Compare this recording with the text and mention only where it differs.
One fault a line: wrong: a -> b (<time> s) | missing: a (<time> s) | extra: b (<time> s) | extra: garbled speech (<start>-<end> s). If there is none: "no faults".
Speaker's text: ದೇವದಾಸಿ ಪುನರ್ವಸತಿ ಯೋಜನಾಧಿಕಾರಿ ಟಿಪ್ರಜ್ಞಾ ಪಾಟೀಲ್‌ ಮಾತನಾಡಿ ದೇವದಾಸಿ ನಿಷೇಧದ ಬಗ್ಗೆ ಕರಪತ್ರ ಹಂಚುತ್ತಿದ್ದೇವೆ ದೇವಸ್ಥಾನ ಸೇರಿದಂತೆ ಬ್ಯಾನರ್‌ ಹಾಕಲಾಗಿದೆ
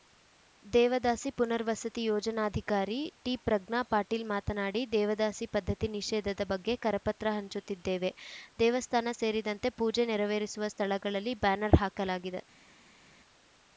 extra: ಪದ್ಧತಿ (5.5 s)
extra: ಪೂಜೆ ನೆರವೇರಿಸುವ ಸ್ಥಳಗಳಲ್ಲಿ (9.8 s)